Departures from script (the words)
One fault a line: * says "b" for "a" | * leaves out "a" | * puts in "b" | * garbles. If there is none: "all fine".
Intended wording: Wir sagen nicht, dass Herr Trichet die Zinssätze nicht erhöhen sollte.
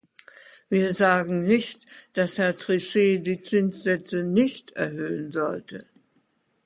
all fine